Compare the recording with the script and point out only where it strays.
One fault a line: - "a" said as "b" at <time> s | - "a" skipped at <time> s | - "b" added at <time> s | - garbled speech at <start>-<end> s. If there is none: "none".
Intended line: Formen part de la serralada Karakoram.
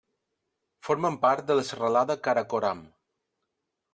none